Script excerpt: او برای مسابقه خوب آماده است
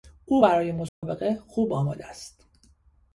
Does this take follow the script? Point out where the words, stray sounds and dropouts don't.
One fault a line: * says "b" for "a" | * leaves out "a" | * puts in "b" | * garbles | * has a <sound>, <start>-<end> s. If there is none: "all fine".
* has a dropout, 0.9-1.0 s